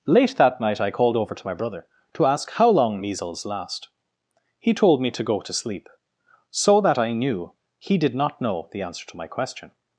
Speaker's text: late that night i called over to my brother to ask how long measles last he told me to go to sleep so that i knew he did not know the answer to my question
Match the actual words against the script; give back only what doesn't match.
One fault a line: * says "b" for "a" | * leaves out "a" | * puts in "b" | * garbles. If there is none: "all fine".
all fine